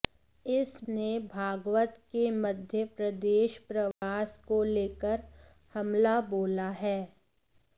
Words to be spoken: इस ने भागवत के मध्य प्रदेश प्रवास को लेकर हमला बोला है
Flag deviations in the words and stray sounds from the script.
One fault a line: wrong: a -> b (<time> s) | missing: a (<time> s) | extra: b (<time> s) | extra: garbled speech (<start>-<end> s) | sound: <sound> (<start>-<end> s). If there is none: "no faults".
sound: dropout (3.9-4.0 s)